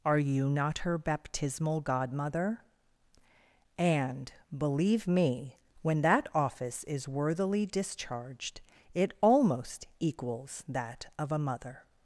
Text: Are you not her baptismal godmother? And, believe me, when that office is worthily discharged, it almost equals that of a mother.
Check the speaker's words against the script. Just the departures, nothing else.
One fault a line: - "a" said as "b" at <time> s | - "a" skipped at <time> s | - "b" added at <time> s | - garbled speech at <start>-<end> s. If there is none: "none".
none